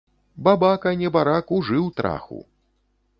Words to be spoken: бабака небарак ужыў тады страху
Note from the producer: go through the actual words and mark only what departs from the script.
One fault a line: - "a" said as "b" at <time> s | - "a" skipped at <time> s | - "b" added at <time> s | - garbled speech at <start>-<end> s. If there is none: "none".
- "тады" skipped at 1.9 s